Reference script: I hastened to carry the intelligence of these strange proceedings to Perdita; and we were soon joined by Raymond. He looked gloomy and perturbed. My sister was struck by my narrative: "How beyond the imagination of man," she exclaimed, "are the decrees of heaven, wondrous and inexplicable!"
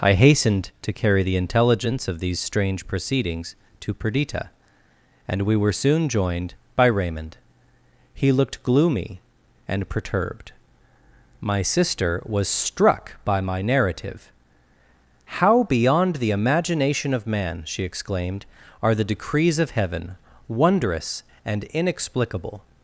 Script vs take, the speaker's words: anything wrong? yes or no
no